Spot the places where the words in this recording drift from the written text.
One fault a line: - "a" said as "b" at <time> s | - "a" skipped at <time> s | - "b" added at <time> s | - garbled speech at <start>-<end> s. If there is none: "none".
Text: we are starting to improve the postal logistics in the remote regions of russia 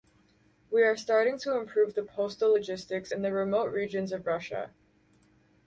none